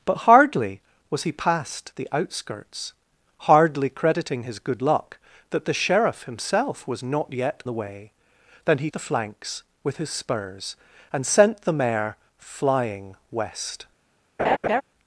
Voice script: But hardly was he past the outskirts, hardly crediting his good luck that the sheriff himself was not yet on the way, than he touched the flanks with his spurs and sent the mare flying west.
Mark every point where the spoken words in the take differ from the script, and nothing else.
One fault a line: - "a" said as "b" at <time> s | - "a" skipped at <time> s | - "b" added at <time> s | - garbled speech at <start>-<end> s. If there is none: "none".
- "on" skipped at 7.6 s
- "touched" skipped at 8.9 s